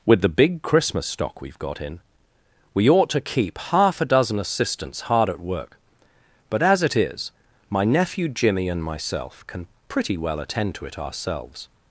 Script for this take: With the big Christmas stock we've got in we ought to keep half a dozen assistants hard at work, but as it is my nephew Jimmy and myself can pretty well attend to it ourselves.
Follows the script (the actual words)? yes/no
yes